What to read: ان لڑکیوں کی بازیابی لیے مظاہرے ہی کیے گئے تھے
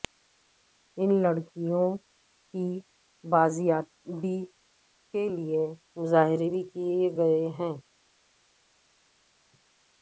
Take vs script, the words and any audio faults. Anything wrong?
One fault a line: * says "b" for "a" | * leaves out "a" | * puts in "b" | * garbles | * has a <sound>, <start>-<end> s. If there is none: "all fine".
* puts in "کے"
* says "بھی" for "ہی"
* says "ہیں" for "تھے"